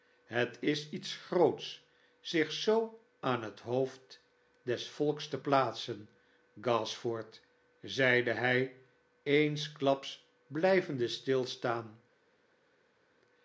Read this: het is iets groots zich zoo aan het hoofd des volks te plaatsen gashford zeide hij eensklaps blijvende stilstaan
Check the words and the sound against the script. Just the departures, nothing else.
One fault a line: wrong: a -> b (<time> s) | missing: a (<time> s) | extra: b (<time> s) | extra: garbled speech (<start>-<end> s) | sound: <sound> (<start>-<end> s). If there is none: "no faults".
no faults